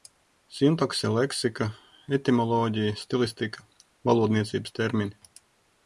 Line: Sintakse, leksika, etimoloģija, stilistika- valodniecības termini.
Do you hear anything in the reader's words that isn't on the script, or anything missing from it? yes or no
no